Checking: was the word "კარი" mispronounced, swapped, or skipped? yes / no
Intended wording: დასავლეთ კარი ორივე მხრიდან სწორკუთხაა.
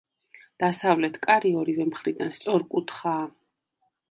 no